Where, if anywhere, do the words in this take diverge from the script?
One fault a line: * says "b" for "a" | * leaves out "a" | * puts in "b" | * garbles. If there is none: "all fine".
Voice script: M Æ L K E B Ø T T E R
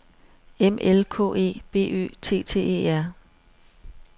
* leaves out "Æ"